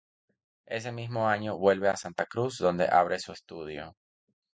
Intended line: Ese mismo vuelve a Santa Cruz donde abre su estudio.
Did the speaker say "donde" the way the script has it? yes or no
yes